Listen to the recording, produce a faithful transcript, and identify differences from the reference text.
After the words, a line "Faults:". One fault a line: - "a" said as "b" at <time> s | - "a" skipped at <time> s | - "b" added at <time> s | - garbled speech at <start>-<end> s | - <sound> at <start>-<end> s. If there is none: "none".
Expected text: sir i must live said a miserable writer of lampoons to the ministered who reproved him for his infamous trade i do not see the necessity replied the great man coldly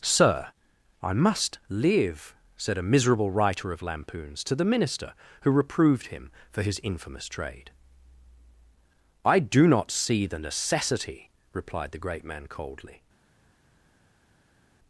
sir i must live said a miserable writer of lampoons to the minister who reproved him for his infamous trade i do not see the necessity replied the great man coldly
Faults:
- "ministered" said as "minister" at 4.7 s